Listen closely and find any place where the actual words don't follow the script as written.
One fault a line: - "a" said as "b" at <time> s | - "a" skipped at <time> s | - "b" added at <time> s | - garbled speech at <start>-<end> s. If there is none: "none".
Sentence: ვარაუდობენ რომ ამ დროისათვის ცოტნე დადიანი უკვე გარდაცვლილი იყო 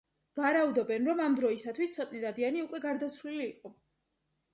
none